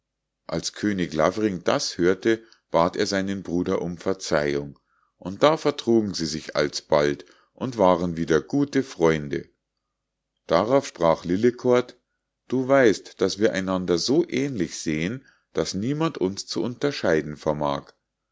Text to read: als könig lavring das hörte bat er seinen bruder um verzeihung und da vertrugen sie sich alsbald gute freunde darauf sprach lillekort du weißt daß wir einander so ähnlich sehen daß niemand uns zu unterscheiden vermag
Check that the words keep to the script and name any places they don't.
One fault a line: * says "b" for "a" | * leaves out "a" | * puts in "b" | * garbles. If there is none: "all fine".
* puts in "und waren wieder"